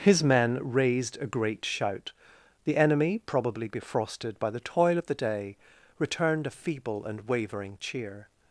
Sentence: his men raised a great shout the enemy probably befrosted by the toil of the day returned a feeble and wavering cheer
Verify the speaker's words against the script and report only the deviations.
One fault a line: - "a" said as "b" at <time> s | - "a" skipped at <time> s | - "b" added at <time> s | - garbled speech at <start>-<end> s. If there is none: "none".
none